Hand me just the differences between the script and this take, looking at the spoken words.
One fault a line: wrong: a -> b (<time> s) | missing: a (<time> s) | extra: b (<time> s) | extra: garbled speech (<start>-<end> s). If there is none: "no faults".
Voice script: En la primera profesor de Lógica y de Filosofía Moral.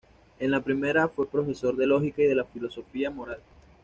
extra: fue (1.1 s)